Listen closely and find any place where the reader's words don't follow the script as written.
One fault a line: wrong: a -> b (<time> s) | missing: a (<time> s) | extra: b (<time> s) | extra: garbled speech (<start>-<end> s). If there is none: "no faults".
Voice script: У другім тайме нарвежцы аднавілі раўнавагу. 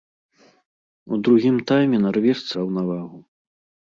missing: аднавілі (2.5 s)